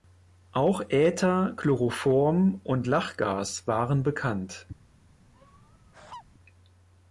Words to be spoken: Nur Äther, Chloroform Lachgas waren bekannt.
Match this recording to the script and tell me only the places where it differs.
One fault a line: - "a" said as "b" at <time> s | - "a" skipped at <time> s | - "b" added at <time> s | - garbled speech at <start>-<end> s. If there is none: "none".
- "Nur" said as "Auch" at 0.5 s
- "und" added at 2.6 s